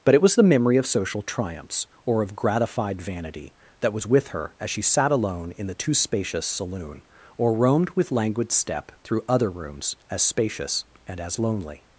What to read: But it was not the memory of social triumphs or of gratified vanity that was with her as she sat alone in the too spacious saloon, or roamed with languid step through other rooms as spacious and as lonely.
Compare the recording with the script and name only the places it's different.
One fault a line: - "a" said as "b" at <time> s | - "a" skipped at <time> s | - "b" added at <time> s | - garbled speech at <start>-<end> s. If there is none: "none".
- "not" skipped at 0.3 s